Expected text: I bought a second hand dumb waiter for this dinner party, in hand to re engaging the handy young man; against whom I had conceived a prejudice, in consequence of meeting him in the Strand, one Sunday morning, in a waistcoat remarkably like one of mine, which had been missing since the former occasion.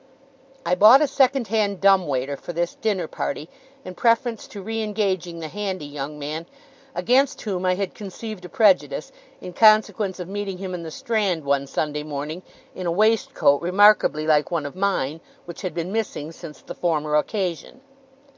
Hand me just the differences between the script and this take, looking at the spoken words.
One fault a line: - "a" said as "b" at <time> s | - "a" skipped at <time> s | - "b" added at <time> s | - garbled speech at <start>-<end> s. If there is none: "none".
- "hand" said as "preference" at 3.9 s